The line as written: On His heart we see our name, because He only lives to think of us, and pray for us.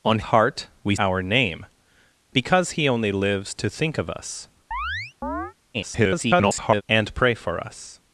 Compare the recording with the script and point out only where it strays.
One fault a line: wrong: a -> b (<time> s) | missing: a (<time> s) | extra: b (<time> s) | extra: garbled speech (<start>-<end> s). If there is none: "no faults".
missing: His (0.2 s)
missing: see (1.0 s)
extra: garbled speech (5.7-6.8 s)